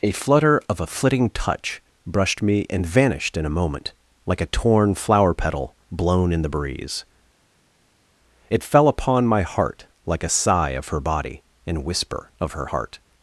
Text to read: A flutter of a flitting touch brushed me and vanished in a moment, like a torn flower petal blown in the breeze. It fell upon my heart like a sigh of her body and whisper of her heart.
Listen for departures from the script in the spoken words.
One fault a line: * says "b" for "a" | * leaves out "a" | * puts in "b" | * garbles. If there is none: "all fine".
all fine